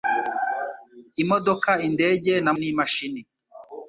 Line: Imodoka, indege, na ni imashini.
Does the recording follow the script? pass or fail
pass